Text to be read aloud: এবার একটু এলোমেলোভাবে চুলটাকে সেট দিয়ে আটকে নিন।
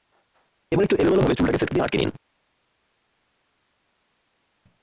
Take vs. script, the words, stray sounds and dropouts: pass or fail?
pass